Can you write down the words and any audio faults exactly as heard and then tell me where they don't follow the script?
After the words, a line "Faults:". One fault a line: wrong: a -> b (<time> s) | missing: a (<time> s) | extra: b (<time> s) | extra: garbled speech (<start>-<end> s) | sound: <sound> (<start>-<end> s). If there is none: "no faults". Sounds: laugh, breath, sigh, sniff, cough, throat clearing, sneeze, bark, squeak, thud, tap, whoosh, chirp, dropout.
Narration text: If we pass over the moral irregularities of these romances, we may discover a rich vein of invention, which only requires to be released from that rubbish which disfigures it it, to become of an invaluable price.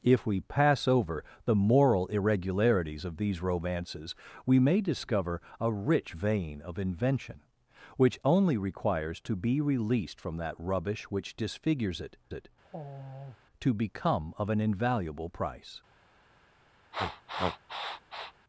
If we pass over the moral irregularities of these romances, we may discover a rich vein of invention, which only requires to be released from that rubbish which disfigures it it, to become of an invaluable price.
Faults:
sound: sigh (12.6-13.4 s)
sound: sniff (16.9-18.3 s)